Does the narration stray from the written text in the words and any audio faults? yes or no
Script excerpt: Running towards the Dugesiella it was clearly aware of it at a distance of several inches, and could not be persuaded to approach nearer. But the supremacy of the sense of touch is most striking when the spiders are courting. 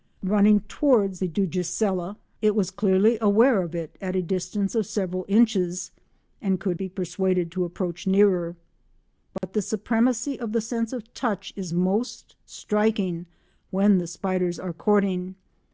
yes